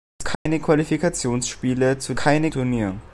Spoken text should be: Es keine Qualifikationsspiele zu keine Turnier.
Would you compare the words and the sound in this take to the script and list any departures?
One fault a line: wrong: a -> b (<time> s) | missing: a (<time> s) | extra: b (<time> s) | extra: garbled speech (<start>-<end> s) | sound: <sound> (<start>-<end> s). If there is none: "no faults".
sound: dropout (0.3-0.5 s)